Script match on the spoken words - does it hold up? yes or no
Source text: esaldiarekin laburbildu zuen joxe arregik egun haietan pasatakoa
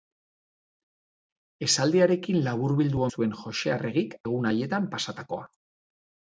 yes